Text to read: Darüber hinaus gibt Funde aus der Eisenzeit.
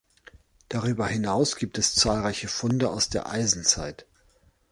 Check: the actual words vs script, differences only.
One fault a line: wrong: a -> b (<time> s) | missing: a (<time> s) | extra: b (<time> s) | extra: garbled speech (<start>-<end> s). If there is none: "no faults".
extra: es zahlreiche (1.8 s)